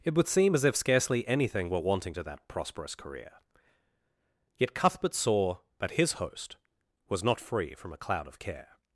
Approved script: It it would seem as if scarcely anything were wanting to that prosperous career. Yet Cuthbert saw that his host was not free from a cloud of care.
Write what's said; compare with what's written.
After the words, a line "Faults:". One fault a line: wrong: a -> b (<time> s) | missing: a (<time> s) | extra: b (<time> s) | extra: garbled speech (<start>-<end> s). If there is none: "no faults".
It would seem as if scarcely anything were wanting to that prosperous career. Yet Cuthbert saw that his host was not free from a cloud of care.
Faults:
missing: it (0.1 s)